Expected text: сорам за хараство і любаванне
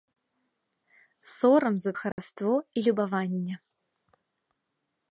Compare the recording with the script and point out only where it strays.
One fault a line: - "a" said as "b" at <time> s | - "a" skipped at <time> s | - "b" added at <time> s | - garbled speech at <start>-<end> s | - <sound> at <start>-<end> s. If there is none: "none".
- dropout at 2.1-2.2 s